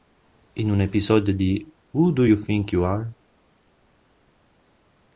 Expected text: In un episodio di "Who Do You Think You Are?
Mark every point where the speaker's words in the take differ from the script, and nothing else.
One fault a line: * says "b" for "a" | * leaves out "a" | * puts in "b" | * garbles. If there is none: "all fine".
all fine